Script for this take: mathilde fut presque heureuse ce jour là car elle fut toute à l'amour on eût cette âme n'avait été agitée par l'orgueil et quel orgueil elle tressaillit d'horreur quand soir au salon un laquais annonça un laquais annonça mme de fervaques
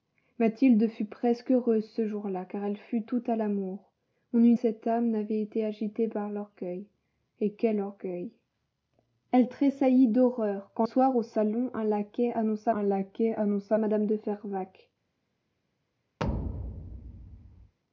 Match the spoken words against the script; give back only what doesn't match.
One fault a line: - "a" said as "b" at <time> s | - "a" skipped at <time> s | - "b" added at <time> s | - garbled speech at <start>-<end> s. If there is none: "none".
none